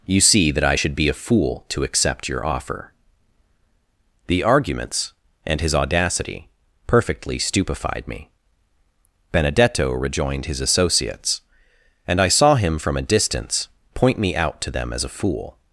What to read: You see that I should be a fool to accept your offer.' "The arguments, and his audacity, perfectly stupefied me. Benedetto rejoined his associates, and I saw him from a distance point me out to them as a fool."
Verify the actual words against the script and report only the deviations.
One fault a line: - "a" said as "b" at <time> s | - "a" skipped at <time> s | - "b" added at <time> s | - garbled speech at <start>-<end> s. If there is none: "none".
none